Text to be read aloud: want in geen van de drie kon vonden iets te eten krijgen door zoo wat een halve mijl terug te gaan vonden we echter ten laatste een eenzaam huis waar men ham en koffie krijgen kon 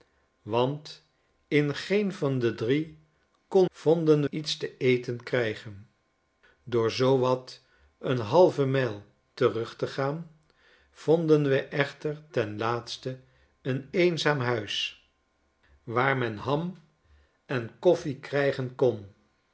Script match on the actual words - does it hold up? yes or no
yes